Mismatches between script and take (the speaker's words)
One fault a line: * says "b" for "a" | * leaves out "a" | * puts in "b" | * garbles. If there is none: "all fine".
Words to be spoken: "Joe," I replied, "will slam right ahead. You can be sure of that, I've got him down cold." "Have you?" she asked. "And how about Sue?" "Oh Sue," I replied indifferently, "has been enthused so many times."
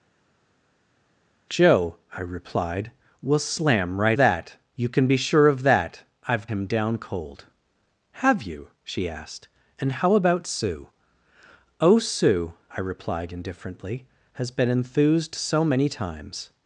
* says "that" for "ahead"
* leaves out "got"